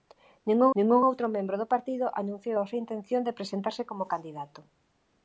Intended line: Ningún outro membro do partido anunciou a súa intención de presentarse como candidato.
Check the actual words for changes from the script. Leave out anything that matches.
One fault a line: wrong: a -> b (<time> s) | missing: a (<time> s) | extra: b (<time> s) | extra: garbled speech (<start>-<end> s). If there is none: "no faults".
extra: ningún (0.8 s)